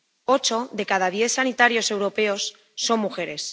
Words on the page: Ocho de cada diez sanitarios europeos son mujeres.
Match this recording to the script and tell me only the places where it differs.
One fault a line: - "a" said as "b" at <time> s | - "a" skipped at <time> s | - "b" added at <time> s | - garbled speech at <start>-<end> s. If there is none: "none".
none